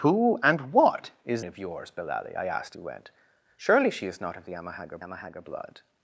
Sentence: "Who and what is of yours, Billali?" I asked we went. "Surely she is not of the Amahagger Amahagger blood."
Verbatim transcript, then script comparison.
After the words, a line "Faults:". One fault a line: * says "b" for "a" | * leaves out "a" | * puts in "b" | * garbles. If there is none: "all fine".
"Who and what is of yours, Billali?" I asked we went. "Surely she is not of the Amahagger Amahagger blood."
Faults:
all fine